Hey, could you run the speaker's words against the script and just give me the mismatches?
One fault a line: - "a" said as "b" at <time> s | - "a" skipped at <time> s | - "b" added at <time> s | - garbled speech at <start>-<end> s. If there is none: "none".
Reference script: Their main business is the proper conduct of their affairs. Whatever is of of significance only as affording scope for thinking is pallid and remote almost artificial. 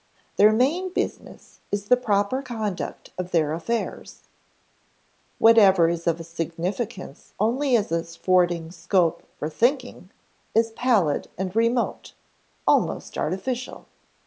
- "of" skipped at 6.2 s